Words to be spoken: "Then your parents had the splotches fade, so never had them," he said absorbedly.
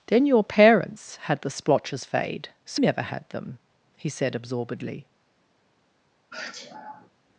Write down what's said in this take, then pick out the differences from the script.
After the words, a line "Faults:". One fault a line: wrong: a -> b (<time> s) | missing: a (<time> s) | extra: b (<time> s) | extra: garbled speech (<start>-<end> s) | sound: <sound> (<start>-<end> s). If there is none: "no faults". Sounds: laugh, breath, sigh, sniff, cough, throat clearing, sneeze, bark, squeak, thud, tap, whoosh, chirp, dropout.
"Then your parents had the splotches fade, so never had them," he said absorbedly.
Faults:
sound: sneeze (6.3-7.1 s)